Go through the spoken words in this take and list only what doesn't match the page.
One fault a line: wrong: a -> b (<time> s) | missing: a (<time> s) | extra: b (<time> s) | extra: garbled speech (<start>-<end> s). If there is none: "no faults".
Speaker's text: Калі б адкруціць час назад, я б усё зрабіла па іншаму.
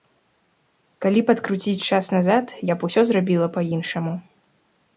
no faults